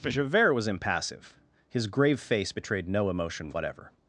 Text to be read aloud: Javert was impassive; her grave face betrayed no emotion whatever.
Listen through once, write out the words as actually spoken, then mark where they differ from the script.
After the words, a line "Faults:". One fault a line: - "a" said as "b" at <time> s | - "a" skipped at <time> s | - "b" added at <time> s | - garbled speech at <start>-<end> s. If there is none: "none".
Javert was impassive; his grave face betrayed no emotion whatever.
Faults:
- "her" said as "his" at 1.7 s